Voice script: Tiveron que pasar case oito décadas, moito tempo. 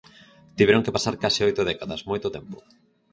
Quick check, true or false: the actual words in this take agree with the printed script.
true